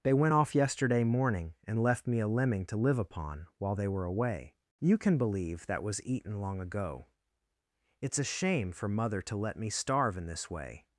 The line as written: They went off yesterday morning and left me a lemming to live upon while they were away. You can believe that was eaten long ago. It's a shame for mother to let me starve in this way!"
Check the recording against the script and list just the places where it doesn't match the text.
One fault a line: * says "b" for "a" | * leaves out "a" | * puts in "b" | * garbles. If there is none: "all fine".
all fine